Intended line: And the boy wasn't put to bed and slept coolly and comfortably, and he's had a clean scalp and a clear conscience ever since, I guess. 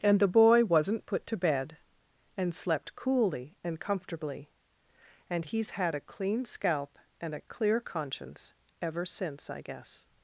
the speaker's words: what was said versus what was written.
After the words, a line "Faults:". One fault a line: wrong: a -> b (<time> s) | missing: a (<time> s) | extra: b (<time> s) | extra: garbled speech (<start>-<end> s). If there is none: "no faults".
And the boy wasn't put to bed and slept coolly and comfortably, and he's had a clean scalp and a clear conscience ever since, I guess.
Faults:
no faults